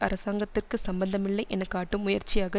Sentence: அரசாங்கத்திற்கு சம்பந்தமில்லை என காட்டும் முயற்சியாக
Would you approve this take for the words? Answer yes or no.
yes